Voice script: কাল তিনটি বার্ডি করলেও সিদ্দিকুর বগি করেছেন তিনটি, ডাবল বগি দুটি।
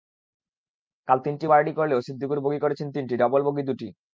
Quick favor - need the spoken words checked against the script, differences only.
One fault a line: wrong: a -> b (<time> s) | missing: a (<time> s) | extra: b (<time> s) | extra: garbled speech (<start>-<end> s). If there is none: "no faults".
no faults